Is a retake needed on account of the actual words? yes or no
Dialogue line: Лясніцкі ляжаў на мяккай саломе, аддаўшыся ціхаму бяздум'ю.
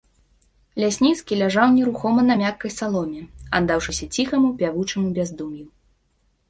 yes